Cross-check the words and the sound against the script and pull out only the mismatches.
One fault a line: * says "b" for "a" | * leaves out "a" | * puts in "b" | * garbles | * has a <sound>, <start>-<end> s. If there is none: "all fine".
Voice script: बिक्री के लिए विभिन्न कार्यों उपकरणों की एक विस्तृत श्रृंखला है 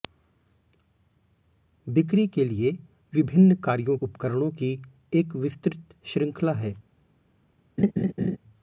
* has a laugh, 7.8-8.4 s